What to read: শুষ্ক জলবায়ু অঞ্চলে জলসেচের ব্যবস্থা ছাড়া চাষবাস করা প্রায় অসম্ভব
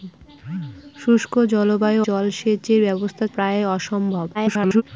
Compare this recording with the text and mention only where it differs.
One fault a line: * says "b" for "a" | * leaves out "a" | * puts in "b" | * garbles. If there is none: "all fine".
* leaves out "অঞ্চলে"
* leaves out "ছাড়া চাষবাস করা"
* garbles